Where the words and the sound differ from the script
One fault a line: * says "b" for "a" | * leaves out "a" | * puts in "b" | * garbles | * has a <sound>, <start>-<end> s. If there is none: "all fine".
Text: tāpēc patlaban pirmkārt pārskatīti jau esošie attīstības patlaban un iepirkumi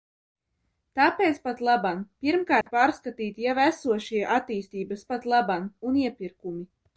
* has a dropout, 2.6-2.7 s